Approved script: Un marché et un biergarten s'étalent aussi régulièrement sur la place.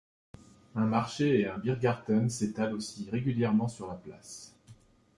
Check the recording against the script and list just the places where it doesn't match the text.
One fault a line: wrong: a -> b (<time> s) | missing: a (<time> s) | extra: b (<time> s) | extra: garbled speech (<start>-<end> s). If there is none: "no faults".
no faults